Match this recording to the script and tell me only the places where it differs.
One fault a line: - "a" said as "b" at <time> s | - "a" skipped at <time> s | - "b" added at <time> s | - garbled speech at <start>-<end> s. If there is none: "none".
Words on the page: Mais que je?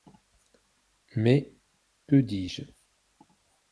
- "dis" added at 2.2 s